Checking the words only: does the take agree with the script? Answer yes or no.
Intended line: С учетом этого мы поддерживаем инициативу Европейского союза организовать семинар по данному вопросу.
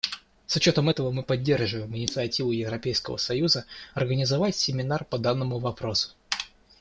yes